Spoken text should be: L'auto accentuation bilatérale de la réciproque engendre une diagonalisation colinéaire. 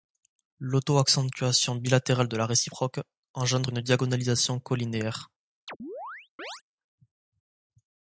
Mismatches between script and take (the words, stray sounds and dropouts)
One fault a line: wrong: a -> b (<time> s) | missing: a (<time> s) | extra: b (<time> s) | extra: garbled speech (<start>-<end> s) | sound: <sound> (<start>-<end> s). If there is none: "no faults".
sound: chirp (5.7-6.6 s)